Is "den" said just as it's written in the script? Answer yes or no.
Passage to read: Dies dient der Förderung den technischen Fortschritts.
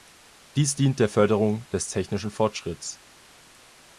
no